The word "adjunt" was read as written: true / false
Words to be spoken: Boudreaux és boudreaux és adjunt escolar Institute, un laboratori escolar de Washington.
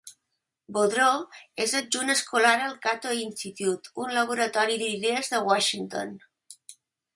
false